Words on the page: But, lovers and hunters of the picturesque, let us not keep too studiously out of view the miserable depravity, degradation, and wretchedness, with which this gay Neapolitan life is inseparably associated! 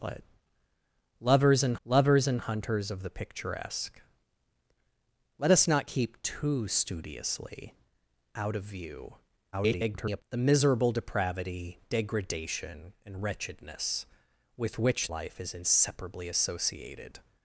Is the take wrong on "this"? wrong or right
wrong